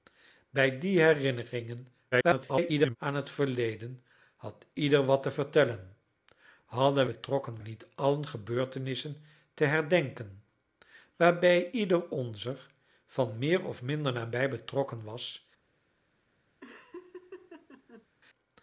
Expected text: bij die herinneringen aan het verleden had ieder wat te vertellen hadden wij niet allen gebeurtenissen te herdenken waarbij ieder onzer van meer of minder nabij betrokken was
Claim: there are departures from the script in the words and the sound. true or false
true